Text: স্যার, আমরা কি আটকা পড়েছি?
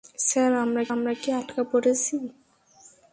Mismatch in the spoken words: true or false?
true